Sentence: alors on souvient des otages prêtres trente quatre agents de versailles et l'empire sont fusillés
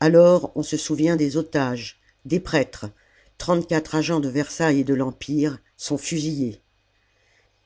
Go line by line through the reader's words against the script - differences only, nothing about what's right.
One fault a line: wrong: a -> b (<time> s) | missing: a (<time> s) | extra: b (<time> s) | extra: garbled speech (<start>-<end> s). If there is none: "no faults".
extra: se (0.6 s)
extra: des (2.2 s)
extra: de (4.8 s)